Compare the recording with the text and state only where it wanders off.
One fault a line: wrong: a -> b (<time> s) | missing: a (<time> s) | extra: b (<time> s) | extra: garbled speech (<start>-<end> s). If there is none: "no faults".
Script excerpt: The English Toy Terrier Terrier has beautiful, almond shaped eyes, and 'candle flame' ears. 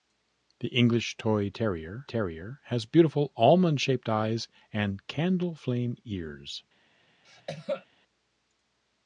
no faults